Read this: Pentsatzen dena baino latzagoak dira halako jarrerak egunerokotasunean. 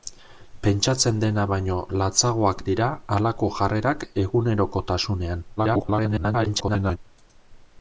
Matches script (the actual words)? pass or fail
fail